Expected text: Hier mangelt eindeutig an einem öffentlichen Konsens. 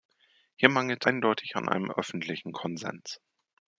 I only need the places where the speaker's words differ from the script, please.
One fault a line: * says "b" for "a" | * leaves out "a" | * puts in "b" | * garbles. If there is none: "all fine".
all fine